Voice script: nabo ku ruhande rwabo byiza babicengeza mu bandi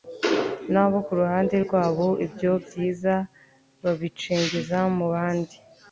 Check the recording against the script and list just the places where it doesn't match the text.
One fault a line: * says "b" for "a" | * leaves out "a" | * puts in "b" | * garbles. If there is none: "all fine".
* puts in "ibyo"